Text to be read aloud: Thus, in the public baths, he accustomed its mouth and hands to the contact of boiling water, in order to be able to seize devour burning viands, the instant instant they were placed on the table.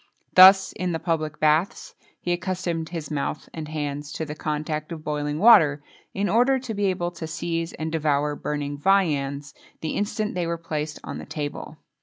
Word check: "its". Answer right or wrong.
wrong